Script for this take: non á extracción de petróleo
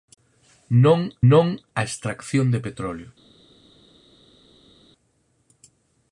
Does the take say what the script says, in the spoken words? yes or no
no